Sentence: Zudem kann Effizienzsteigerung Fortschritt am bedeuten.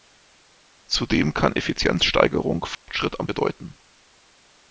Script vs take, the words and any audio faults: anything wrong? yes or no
yes